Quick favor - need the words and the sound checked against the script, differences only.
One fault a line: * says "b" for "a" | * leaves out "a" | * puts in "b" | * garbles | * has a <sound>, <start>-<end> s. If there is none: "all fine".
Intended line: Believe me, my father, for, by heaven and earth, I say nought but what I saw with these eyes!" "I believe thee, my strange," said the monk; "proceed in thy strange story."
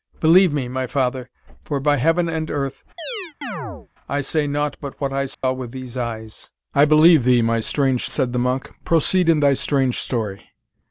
* has a chirp, 3.0-3.9 s
* has a dropout, 5.3-5.4 s